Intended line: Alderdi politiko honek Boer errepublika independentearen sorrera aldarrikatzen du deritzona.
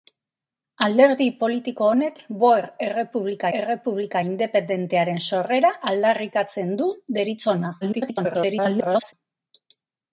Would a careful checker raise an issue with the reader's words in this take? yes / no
yes